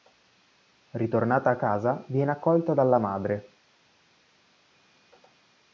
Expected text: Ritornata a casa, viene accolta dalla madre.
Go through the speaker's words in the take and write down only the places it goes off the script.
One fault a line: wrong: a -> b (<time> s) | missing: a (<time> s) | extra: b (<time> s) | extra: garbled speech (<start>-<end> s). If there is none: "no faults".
no faults